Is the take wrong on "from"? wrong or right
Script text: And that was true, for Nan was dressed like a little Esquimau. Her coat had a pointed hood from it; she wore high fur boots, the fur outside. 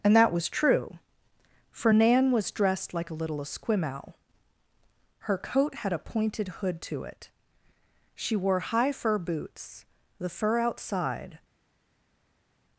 wrong